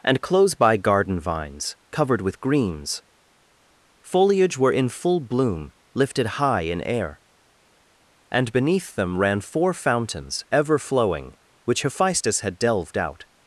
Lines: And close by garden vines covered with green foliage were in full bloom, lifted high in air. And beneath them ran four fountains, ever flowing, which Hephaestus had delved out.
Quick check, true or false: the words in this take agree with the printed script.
false